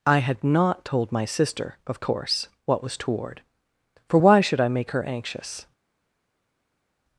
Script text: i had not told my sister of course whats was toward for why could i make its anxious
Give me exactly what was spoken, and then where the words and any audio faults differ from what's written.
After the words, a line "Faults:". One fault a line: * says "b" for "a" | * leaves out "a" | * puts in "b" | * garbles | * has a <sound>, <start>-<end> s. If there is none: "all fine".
i had not told my sister of course what was toward for why should i make her anxious
Faults:
* says "what" for "whats"
* says "should" for "could"
* says "her" for "its"